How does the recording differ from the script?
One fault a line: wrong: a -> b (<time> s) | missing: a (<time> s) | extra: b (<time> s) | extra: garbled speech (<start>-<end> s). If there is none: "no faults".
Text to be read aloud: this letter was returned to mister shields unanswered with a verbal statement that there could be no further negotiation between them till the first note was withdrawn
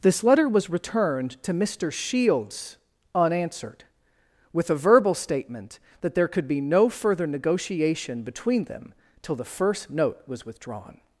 no faults